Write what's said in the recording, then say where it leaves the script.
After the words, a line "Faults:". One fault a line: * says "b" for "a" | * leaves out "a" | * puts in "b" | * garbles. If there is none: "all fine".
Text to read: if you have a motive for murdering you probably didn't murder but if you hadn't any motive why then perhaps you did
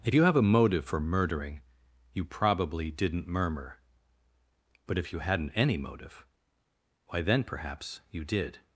if you have a motive for murdering you probably didn't murmur but if you hadn't any motive why then perhaps you did
Faults:
* says "murmur" for "murder"